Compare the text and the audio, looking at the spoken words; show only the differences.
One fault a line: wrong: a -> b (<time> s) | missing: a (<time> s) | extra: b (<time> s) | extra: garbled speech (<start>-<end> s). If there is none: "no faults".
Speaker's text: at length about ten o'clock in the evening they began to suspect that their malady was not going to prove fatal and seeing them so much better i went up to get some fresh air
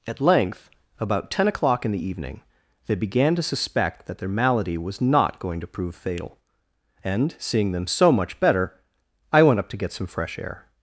no faults